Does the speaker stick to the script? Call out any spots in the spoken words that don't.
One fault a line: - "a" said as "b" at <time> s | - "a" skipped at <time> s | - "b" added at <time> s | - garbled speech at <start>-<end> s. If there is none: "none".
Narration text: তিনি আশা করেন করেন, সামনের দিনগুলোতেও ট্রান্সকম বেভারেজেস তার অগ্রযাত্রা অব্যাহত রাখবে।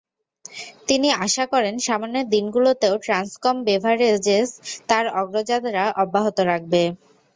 - "করেন" skipped at 1.8 s